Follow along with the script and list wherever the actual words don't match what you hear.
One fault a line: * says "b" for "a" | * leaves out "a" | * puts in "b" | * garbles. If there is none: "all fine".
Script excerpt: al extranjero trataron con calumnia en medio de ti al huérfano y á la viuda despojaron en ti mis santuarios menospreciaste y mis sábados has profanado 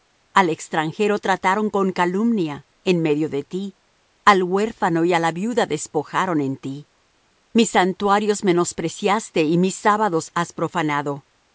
all fine